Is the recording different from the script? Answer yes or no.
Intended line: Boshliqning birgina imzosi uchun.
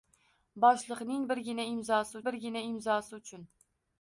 yes